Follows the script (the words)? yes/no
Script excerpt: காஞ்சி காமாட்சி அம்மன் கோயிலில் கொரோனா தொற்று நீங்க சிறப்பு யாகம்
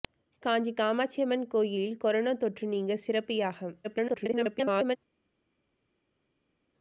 no